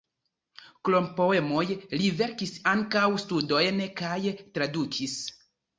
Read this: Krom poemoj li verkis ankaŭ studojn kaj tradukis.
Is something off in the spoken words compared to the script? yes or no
no